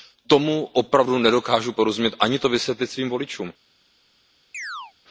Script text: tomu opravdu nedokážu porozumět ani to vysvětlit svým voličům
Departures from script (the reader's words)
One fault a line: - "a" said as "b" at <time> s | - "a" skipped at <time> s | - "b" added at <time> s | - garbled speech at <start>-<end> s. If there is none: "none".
none